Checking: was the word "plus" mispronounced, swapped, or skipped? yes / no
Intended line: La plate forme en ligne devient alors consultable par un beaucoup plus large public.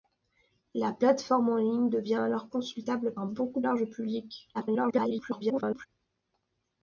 yes